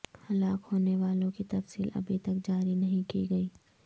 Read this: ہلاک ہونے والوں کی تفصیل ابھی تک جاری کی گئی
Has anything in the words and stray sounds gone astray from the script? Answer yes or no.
yes